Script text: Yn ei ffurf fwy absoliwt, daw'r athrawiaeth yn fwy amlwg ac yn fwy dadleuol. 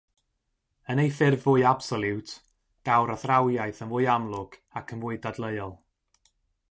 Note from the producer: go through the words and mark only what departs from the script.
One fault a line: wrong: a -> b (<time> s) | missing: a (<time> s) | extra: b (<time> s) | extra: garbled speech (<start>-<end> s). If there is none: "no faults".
no faults